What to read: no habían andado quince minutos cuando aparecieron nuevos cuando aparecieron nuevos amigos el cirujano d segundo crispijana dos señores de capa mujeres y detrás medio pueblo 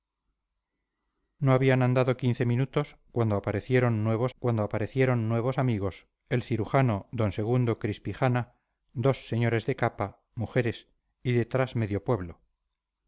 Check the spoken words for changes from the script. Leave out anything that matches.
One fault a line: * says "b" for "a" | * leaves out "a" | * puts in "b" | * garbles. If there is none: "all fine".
all fine